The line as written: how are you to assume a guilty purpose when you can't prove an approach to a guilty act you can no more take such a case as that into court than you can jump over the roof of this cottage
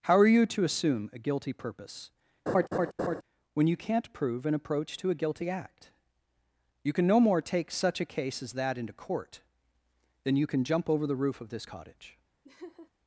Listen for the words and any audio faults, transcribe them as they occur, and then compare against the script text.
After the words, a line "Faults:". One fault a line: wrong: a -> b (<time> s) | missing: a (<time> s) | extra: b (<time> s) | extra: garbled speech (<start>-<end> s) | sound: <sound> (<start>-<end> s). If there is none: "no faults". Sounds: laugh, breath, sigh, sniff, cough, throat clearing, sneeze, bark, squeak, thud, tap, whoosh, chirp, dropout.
how are you to assume a guilty purpose when you can't prove an approach to a guilty act you can no more take such a case as that into court than you can jump over the roof of this cottage
Faults:
sound: laugh (2.5-3.2 s)
sound: laugh (12.4-12.9 s)